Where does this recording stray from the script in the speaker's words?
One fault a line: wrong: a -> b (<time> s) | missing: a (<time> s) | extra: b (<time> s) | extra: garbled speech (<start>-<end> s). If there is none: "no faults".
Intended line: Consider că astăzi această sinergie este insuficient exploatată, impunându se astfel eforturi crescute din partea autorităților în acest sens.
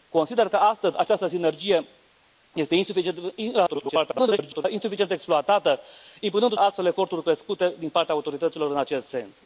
extra: garbled speech (3.7-4.6 s)
missing: se (6.5 s)